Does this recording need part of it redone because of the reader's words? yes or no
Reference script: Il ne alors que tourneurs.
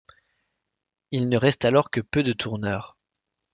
yes